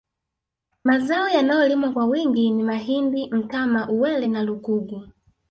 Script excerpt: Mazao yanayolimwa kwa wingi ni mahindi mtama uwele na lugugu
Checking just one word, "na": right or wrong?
right